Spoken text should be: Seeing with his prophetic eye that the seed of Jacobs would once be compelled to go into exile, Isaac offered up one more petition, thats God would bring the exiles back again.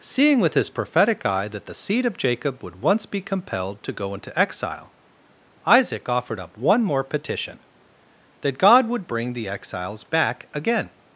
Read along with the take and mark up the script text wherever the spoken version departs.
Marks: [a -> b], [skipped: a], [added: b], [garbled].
Seeing with his prophetic eye that the seed of [Jacobs -> Jacob] would once be compelled to go into exile, Isaac offered up one more petition, [thats -> that] God would bring the exiles back again.